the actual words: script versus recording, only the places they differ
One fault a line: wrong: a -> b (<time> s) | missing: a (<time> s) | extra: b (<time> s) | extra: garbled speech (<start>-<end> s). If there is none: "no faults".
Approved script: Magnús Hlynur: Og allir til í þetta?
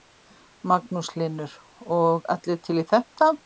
no faults